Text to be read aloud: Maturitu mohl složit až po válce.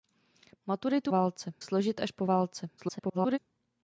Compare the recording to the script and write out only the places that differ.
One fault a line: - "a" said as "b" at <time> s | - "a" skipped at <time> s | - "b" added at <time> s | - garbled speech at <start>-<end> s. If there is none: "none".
- "mohl" said as "válce" at 1.1 s
- garbled speech at 2.8-3.4 s